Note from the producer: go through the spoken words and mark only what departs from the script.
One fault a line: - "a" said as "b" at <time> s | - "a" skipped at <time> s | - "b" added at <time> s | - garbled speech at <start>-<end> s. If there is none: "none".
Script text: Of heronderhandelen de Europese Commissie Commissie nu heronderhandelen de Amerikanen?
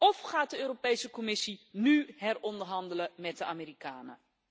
- "heronderhandelen" said as "gaat" at 0.2 s
- "Commissie" skipped at 1.7 s
- "met" added at 3.2 s